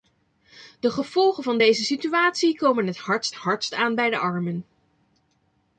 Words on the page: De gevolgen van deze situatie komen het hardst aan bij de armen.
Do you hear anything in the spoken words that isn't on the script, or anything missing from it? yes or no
yes